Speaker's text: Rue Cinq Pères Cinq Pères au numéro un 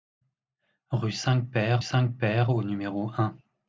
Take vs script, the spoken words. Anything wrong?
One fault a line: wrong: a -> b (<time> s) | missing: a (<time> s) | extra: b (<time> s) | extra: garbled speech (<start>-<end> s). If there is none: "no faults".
no faults